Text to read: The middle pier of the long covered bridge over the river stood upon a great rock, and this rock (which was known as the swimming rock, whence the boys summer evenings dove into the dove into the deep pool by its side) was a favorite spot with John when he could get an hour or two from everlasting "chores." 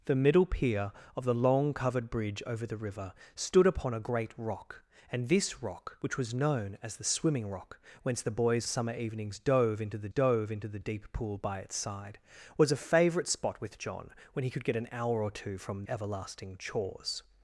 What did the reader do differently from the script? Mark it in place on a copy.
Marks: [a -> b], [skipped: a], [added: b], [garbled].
The middle pier of the long covered bridge over the river stood upon a great rock, and this rock (which was known as the swimming rock, whence the boys summer evenings dove into the dove into the deep pool by its side) was a favorite spot with John when he could get an hour or two from everlasting "chores."